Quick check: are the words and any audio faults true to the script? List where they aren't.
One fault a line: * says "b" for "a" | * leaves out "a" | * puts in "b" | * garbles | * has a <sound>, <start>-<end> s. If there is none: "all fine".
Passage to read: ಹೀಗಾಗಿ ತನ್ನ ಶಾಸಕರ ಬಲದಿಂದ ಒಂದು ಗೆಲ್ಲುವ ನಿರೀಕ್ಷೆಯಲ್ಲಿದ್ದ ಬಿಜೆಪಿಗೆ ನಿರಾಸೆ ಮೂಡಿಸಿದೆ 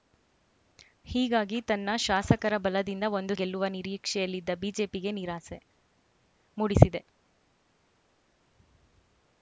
all fine